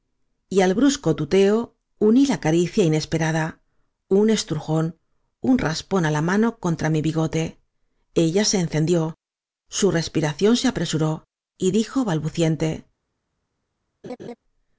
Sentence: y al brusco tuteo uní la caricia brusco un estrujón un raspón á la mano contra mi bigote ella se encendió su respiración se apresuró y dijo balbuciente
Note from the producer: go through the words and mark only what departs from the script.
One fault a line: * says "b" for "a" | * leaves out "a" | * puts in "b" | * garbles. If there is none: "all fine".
* says "inesperada" for "brusco"